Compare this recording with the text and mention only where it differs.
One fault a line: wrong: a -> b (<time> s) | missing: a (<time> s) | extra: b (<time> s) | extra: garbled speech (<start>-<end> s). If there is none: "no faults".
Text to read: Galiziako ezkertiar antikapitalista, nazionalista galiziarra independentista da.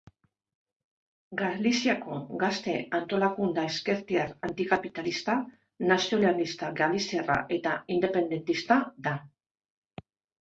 extra: gazte antolakunde (2.4 s)
extra: eta (7.6 s)